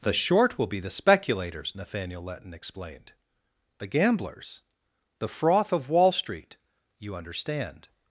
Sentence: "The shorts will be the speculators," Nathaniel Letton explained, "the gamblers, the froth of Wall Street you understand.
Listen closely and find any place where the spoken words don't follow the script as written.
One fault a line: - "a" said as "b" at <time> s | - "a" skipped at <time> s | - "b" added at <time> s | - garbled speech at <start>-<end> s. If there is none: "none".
- "shorts" said as "short" at 0.1 s